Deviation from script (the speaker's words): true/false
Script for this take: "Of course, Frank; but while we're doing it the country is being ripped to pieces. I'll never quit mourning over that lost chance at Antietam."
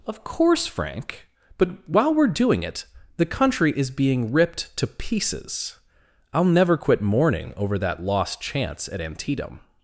false